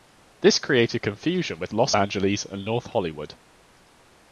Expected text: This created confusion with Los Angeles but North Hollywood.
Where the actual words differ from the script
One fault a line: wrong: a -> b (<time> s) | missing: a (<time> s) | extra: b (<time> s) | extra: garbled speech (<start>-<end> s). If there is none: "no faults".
wrong: but -> and (2.4 s)